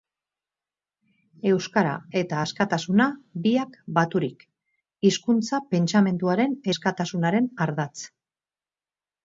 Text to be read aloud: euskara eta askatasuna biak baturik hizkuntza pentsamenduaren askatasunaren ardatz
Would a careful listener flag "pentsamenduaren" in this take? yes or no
no